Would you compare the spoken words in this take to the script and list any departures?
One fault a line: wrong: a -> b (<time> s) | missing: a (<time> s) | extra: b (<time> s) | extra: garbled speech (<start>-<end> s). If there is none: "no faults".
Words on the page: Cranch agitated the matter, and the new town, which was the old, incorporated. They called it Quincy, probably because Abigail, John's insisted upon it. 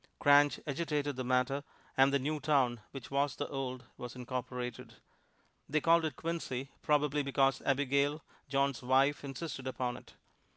extra: was (4.0 s)
extra: wife (8.8 s)